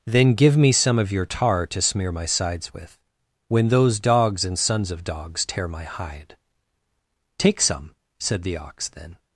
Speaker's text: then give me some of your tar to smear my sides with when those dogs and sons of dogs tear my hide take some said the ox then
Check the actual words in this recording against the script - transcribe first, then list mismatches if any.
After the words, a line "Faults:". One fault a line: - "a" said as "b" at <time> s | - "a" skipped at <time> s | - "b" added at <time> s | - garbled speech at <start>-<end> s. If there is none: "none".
then give me some of your tar to smear my sides with when those dogs and sons of dogs tear my hide take some said the ox then
Faults:
none